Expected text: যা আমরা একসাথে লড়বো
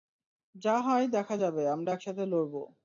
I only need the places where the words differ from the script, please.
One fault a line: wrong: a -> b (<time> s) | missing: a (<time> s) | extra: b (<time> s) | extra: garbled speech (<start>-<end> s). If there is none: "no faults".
extra: হয় দেখা যাবে (0.8 s)